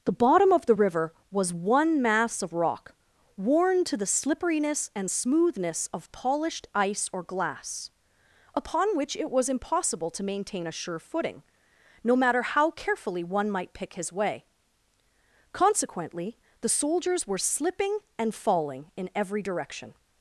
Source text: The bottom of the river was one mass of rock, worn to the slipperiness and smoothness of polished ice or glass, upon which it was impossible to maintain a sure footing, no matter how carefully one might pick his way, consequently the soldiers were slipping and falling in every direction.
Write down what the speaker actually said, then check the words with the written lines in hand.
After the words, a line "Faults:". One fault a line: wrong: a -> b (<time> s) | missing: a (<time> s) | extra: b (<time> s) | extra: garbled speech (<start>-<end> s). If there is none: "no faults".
The bottom of the river was one mass of rock, worn to the slipperiness and smoothness of polished ice or glass, upon which it was impossible to maintain a sure footing, no matter how carefully one might pick his way, consequently the soldiers were slipping and falling in every direction.
Faults:
no faults